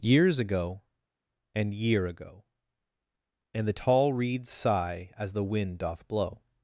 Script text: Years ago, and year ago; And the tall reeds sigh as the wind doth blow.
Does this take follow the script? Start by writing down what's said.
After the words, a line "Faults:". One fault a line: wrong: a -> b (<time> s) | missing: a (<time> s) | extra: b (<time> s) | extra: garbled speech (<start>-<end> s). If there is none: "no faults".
Years ago, and year ago; And the tall reeds sigh as the wind doth blow.
Faults:
no faults